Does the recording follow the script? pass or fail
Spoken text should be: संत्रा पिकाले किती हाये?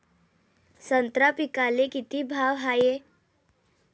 fail